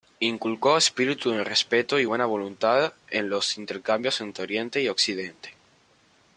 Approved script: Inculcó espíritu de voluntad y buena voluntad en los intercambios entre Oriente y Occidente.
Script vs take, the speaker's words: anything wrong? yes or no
yes